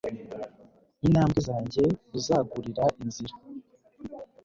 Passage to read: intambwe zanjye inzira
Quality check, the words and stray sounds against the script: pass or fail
fail